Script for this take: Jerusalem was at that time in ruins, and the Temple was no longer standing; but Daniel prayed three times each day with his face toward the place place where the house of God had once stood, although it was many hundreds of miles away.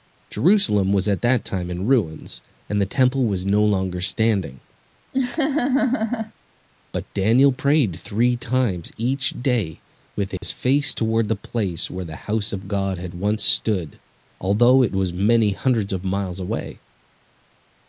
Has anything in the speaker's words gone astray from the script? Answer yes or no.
yes